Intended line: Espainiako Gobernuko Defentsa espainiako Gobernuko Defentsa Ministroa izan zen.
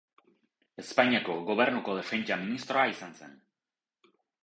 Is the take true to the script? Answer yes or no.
no